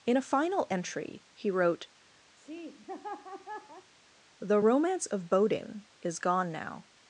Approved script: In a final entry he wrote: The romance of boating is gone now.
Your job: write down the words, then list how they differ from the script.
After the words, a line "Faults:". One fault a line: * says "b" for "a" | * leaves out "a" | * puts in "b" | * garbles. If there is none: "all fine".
In a final entry he wrote: The romance of boating is gone now.
Faults:
all fine